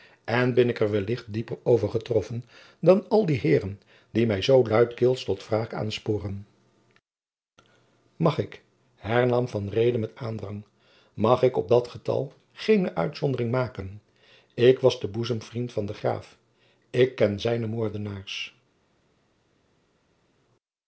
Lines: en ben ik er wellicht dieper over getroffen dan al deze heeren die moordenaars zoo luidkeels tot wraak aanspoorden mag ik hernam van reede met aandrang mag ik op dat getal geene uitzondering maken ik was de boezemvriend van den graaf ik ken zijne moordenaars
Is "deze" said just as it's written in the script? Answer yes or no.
no